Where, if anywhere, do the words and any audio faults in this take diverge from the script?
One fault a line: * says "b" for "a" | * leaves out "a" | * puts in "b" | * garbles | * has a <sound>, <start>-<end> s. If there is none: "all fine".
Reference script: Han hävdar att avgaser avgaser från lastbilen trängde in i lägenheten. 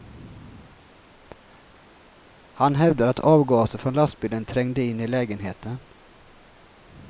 * leaves out "avgaser"